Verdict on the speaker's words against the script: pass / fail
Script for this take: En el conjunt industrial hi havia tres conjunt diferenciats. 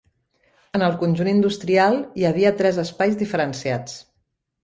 fail